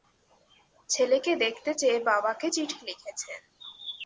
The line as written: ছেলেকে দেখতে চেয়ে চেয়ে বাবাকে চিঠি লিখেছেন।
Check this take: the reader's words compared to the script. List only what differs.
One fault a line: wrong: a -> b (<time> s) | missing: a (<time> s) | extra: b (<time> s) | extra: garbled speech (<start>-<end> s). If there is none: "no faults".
missing: চেয়ে (2.0 s)